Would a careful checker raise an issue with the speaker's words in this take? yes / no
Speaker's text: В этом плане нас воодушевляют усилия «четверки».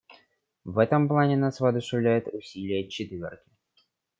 no